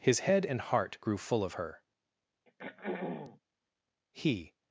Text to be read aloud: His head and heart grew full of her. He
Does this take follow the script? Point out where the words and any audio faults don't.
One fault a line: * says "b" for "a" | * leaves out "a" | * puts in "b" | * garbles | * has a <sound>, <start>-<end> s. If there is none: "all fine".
* has a throat clearing, 2.5-3.4 s